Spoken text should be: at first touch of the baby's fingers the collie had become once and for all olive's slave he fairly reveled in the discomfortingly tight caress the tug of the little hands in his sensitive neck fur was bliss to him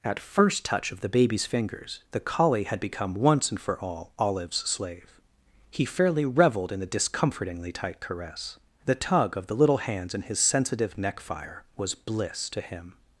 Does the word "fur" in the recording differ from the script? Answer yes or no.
yes